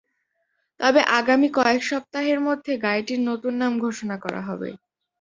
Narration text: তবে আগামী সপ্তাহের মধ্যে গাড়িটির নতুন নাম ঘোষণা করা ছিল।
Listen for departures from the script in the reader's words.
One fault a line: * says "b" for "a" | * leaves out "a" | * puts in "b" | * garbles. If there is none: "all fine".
* puts in "কয়েক"
* says "হবে" for "ছিল"